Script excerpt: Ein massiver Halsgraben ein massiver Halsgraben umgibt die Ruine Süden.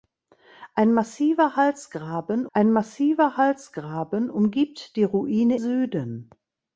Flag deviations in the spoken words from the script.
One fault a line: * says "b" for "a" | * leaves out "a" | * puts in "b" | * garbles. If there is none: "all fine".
all fine